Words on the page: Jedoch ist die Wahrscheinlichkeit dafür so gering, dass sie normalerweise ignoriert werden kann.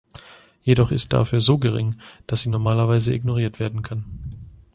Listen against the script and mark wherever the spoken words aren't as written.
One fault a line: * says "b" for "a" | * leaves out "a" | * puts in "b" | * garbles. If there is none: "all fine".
* leaves out "die Wahrscheinlichkeit"